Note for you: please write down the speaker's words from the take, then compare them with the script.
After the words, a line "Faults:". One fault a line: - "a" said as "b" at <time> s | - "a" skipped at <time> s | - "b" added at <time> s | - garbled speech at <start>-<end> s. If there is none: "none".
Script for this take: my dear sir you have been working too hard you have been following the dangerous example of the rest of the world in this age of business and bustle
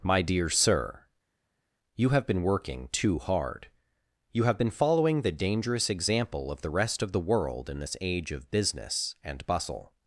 my dear sir you have been working too hard you have been following the dangerous example of the rest of the world in this age of business and bustle
Faults:
none